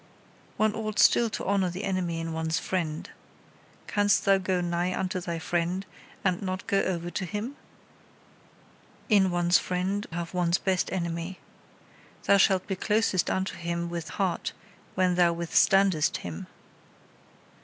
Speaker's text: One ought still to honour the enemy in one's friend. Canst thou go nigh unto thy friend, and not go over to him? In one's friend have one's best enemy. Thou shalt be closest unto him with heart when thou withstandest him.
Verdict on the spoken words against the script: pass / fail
pass